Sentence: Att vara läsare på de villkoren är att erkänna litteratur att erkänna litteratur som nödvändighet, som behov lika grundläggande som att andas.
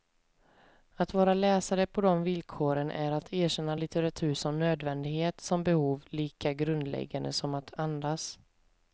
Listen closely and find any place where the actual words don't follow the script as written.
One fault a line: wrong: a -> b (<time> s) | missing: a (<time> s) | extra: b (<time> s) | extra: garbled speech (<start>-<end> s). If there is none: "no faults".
missing: att erkänna litteratur (4.3 s)